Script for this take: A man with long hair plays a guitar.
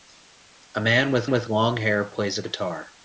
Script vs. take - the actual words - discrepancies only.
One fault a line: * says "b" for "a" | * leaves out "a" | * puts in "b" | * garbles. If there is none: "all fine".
* puts in "with"